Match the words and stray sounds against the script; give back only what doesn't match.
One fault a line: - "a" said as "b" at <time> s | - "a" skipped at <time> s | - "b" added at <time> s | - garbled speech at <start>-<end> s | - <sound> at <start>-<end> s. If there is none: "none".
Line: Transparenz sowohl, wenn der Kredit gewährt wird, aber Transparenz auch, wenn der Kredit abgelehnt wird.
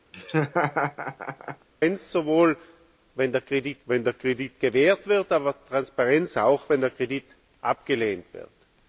- laugh at 0.1-1.7 s
- "wenn der Kredit" added at 3.9 s